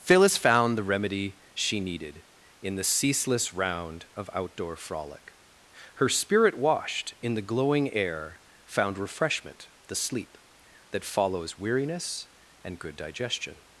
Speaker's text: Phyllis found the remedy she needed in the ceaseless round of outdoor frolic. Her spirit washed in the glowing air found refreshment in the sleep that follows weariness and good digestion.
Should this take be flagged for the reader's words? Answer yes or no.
yes